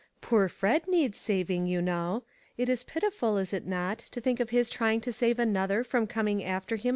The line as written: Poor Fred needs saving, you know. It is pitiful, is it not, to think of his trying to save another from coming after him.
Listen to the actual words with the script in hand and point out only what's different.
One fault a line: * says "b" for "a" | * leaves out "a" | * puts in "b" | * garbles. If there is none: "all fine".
all fine